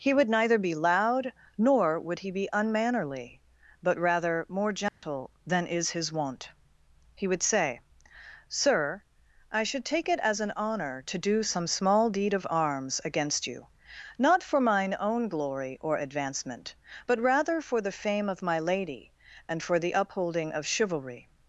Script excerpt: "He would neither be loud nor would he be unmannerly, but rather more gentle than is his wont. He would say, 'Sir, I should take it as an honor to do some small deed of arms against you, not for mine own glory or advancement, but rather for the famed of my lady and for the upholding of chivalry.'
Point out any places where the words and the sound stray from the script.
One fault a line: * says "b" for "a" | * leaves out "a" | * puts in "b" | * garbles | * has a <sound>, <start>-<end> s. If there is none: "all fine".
* has a dropout, 4.9-5.0 s
* says "fame" for "famed"